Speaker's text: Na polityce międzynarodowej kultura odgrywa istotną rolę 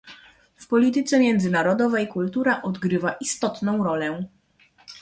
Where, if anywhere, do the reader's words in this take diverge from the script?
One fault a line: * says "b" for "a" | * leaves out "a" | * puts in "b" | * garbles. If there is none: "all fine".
* says "W" for "Na"